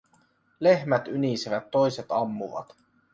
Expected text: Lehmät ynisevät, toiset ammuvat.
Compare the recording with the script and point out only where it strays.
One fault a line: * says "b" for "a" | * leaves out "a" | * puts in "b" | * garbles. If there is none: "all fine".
all fine